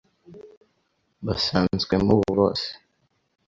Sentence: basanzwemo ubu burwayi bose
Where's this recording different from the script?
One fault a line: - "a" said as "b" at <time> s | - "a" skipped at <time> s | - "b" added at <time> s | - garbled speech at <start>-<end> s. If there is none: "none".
- "burwayi" skipped at 2.3 s